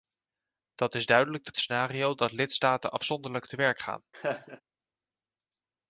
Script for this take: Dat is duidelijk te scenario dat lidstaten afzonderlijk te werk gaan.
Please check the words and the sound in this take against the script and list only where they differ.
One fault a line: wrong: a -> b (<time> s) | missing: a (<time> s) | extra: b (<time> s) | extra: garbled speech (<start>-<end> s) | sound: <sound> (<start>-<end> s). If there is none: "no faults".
sound: laugh (4.1-4.6 s)